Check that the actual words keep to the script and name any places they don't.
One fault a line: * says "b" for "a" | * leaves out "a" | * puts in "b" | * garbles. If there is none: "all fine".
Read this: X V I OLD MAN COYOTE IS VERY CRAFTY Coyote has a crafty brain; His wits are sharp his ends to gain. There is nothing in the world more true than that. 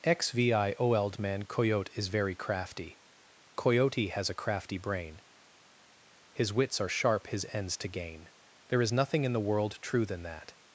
* leaves out "more"